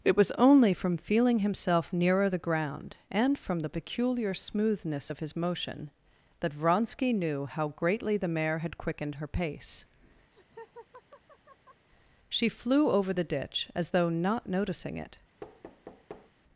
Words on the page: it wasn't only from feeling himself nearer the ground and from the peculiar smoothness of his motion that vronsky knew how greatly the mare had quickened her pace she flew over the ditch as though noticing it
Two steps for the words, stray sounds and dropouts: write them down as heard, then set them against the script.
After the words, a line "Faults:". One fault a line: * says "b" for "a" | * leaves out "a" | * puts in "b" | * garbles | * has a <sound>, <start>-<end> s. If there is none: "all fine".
it was only from feeling himself nearer the ground and from the peculiar smoothness of his motion that vronsky knew how greatly the mare had quickened her pace she flew over the ditch as though not noticing it
Faults:
* says "was" for "wasn't"
* has a laugh, 10.3-11.9 s
* puts in "not"
* has a thud, 15.4-16.3 s